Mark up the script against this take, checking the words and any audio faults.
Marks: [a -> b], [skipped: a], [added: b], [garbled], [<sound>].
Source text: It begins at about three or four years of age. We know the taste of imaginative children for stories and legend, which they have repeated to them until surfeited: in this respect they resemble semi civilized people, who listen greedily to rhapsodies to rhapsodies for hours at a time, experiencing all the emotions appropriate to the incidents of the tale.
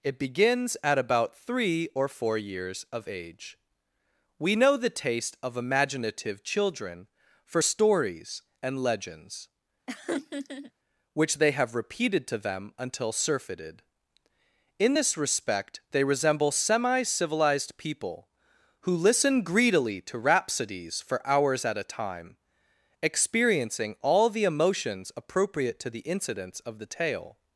It begins at about three or four years of age. We know the taste of imaginative children for stories and [legend, -> legends] [laugh] which they have repeated to them until surfeited: in this respect they resemble semi civilized people, who listen greedily to rhapsodies [skipped: to rhapsodies] for hours at a time, experiencing all the emotions appropriate to the incidents of the tale.